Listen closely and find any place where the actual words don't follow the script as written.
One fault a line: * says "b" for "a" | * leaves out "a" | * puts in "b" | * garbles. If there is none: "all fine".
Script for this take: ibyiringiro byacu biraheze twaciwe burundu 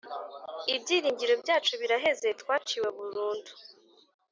all fine